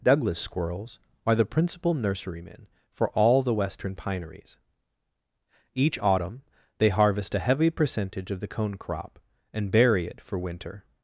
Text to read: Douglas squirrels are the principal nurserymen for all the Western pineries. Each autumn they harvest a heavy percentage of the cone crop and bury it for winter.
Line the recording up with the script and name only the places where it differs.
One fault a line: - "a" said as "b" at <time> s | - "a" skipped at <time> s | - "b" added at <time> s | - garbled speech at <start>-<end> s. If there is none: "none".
none